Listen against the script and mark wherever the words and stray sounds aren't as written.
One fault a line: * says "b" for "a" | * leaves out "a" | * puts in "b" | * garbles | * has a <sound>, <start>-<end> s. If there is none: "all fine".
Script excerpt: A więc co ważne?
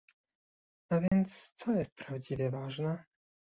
* has a dropout, 1.1-1.1 s
* puts in "jest prawdziwie"